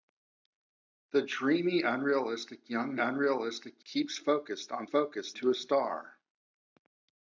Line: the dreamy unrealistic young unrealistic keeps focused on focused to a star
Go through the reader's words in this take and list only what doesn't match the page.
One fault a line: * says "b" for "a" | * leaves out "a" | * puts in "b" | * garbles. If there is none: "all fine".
all fine